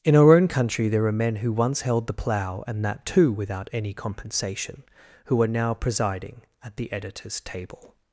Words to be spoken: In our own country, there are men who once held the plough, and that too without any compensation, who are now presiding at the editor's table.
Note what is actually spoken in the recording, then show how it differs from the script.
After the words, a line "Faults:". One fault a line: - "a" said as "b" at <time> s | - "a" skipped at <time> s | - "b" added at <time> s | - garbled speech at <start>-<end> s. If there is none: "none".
In our own country, there are men who once held the plough, and that too without any compensation, who are now presiding at the editor's table.
Faults:
none